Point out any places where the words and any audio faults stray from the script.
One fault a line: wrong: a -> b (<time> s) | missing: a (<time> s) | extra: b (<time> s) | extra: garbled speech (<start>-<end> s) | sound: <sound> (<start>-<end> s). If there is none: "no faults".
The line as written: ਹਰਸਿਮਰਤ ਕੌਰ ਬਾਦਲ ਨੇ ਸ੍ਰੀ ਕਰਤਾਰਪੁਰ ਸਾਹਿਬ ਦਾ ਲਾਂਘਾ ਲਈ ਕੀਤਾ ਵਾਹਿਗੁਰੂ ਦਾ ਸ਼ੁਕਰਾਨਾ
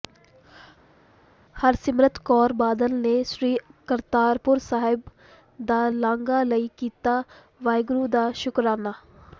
no faults